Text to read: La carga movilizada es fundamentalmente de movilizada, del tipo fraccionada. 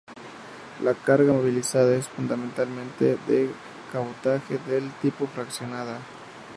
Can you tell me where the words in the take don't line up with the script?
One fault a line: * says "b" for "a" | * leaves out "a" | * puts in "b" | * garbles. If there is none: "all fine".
* says "cabotaje" for "movilizada"